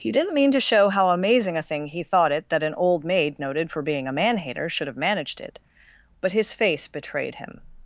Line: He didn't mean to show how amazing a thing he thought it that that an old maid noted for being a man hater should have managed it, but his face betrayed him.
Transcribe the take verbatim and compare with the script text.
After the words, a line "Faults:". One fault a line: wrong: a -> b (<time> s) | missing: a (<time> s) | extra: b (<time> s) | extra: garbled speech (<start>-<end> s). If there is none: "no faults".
He didn't mean to show how amazing a thing he thought it that an old maid noted for being a man hater should have managed it, but his face betrayed him.
Faults:
missing: that (2.6 s)